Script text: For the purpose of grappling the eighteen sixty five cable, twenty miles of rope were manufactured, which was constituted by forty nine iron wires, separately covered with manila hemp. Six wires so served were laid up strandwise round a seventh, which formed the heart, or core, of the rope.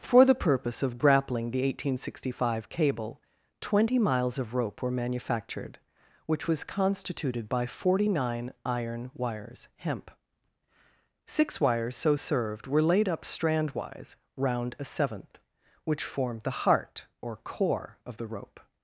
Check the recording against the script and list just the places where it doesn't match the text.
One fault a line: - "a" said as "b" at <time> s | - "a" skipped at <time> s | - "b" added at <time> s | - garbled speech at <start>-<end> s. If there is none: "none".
- "separately covered with manila" skipped at 9.7 s